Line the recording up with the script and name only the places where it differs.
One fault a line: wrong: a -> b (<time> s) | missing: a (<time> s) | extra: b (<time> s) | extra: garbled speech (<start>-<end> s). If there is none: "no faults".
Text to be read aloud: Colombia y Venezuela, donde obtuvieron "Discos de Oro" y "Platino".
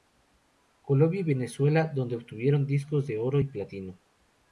no faults